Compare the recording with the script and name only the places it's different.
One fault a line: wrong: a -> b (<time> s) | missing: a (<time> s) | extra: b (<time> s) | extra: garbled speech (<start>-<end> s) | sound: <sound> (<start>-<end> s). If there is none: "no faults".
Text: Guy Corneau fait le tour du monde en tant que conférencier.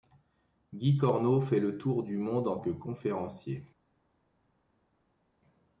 missing: tant (2.6 s)